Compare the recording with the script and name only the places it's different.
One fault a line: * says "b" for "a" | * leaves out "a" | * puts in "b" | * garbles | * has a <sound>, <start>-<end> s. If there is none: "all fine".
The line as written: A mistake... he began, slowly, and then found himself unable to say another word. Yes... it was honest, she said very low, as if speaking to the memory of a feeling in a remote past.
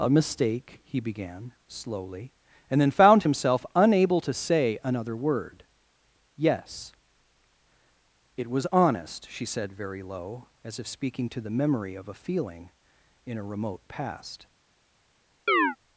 * has a chirp, 15.5-15.8 s